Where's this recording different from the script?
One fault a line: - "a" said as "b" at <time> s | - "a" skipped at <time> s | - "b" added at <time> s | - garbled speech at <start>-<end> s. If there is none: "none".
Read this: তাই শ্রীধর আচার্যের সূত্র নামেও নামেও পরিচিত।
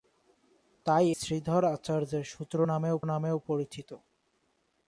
none